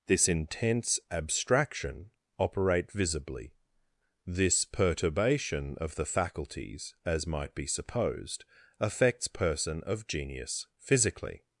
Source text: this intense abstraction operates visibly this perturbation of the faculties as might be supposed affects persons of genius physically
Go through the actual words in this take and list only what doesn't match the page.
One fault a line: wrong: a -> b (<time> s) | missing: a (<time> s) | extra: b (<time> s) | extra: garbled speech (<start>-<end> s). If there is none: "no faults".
wrong: operates -> operate (2.4 s)
wrong: persons -> person (9.3 s)